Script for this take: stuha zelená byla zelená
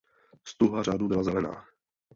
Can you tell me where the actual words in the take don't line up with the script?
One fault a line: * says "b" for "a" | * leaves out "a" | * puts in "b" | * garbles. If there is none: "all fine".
* says "řádu" for "zelená"